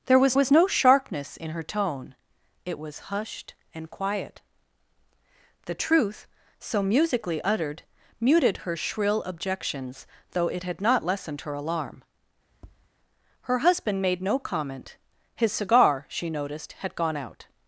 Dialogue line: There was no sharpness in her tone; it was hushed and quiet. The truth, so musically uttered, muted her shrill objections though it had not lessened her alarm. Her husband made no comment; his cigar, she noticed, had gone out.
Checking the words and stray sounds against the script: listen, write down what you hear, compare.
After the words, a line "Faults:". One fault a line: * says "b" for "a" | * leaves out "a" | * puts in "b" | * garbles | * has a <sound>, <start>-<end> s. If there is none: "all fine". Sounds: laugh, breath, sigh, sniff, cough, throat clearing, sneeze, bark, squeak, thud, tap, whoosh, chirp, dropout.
There was was no sharpness in her tone; it was hushed and quiet. The truth, so musically uttered, muted her shrill objections though it had not lessened her alarm. Her husband made no comment; his cigar, she noticed, had gone out.
Faults:
* puts in "was"
* has a tap, 12.5-12.9 s